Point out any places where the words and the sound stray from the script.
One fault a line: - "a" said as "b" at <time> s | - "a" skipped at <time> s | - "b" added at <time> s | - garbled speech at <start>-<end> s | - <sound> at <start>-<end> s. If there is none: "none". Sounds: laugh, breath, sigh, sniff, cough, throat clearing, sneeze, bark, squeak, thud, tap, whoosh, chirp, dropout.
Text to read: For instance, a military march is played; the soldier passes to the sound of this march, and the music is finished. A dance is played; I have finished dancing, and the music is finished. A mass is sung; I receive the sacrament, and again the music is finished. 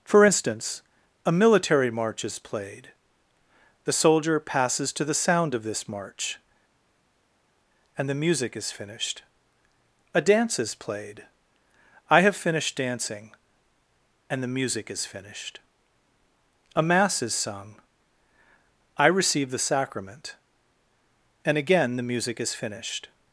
none